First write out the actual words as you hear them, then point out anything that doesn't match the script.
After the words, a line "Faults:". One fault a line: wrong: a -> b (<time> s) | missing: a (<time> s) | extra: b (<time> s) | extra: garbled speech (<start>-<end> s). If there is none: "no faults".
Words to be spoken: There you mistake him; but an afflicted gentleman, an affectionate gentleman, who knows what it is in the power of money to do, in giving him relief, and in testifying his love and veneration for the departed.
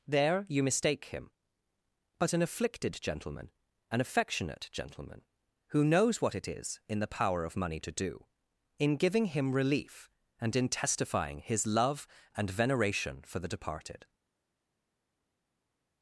There you mistake him; but an afflicted gentleman, an affectionate gentleman, who knows what it is in the power of money to do, in giving him relief, and in testifying his love and veneration for the departed.
Faults:
no faults